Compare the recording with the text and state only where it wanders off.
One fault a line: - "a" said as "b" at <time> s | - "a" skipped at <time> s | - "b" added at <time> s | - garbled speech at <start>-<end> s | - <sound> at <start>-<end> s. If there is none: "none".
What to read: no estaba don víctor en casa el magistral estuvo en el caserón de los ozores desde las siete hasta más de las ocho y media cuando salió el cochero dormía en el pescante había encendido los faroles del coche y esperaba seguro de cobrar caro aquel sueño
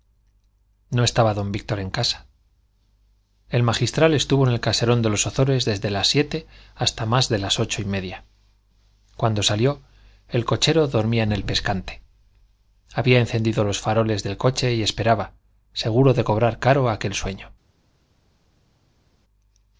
none